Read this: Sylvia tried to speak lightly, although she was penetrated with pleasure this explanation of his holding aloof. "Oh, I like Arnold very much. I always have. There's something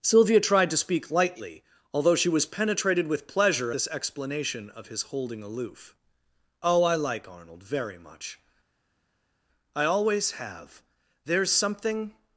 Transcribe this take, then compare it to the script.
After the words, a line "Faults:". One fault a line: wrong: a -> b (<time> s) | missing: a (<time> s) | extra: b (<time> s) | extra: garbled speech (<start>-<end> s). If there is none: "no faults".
Sylvia tried to speak lightly, although she was penetrated with pleasure this explanation of his holding aloof. "Oh, I like Arnold very much. I always have. There's something
Faults:
no faults